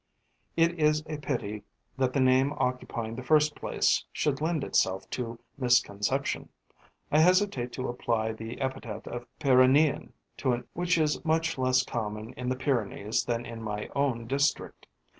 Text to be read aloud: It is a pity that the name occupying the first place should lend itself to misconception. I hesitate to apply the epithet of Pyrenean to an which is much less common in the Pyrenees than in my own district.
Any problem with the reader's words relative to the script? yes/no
no